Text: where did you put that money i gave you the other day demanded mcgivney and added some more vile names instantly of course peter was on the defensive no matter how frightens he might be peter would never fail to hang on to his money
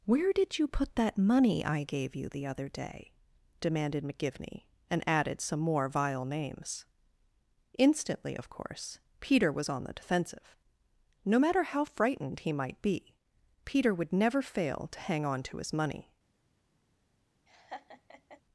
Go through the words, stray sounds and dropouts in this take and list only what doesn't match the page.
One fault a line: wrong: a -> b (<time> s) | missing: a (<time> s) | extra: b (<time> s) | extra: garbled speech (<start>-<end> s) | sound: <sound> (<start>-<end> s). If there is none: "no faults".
wrong: frightens -> frightened (11.8 s)
sound: laugh (17.5-18.4 s)